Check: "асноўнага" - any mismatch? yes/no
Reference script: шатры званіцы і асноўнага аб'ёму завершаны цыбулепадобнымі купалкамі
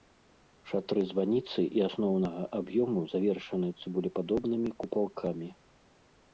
no